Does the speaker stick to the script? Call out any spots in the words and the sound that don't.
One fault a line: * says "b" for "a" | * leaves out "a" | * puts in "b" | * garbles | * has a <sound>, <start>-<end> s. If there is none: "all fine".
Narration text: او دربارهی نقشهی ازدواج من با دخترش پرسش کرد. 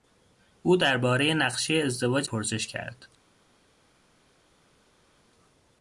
* leaves out "من با دخترش"